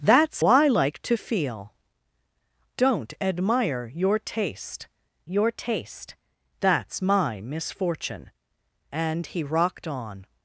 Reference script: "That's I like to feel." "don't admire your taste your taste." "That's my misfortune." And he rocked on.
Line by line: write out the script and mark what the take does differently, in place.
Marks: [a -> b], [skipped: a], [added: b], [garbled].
"That's I like to feel." "don't admire your taste your taste." "That's my misfortune." And he rocked on.